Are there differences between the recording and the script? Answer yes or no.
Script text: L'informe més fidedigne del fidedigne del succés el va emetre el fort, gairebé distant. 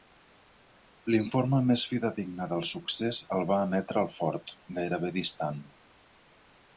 yes